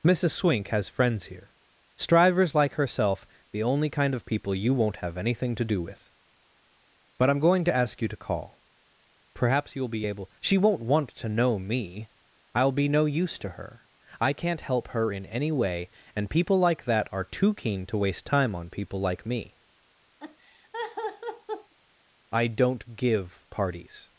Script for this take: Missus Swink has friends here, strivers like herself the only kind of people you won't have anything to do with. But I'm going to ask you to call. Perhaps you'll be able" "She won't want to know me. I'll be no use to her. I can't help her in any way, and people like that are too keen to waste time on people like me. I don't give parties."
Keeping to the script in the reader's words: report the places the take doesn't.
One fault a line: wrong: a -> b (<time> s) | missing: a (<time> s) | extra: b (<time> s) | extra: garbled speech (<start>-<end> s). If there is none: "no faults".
no faults